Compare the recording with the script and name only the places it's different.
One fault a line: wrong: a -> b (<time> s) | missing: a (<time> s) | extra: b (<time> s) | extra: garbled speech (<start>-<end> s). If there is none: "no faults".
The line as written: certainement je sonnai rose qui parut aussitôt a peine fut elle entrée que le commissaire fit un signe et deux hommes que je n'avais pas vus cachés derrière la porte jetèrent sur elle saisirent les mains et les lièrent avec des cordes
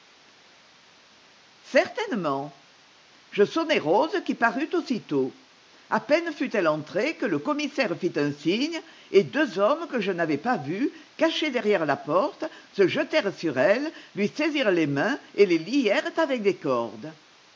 extra: se (12.7 s)
extra: lui (14.1 s)